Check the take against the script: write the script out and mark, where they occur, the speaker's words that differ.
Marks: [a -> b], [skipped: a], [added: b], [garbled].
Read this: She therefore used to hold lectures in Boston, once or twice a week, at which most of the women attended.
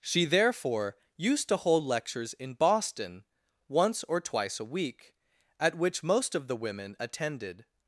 She therefore used to hold lectures in Boston, once or twice a week, at which most of the women attended.